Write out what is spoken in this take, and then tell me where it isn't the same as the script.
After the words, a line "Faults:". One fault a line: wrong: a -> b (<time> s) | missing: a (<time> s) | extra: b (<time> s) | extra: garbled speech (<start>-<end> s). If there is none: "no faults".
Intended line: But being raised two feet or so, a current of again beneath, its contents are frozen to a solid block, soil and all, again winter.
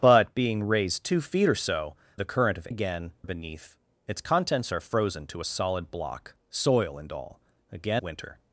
But being raised two feet or so, a current of again beneath, its contents are frozen to a solid block, soil and all, again winter.
Faults:
no faults